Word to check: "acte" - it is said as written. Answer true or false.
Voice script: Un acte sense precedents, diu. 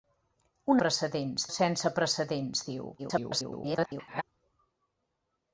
false